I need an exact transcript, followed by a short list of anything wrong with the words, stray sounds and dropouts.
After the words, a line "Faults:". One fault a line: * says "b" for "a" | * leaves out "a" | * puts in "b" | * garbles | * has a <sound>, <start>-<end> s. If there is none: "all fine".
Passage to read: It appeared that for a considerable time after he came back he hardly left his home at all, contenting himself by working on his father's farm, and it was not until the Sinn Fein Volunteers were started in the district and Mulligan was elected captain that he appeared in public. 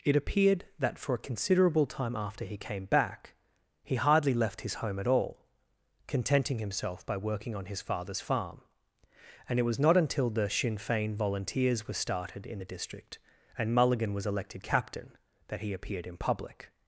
It appeared that for a considerable time after he came back he hardly left his home at all, contenting himself by working on his father's farm, and it was not until the Sinn Fein Volunteers were started in the district and Mulligan was elected captain that he appeared in public.
Faults:
all fine